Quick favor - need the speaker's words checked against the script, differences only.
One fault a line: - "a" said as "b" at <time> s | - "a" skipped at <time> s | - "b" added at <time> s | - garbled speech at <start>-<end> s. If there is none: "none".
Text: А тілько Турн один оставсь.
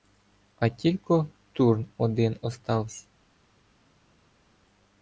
none